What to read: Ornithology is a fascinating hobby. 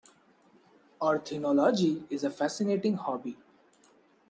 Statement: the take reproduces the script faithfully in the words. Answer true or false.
true